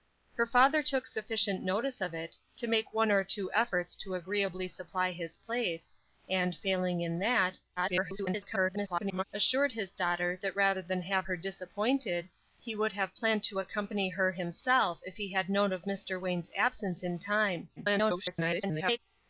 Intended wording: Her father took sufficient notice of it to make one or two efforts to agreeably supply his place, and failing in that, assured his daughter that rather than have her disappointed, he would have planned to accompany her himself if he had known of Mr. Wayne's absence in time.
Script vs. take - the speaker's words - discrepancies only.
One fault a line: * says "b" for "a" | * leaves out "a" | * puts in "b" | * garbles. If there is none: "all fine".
* garbles
* garbles